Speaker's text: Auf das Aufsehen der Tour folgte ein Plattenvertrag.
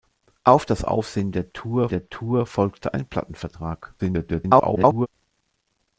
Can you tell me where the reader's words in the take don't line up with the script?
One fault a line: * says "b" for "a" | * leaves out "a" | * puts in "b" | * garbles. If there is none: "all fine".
* puts in "der Tour"
* garbles